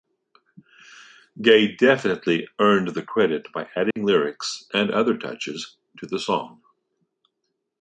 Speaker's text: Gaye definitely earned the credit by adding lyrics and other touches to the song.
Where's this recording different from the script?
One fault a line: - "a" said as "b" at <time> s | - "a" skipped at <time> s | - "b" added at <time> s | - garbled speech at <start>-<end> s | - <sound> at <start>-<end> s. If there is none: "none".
- dropout at 3.9-4.0 s